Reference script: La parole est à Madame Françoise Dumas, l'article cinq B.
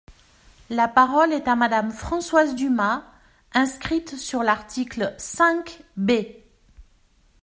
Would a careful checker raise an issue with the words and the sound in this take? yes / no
yes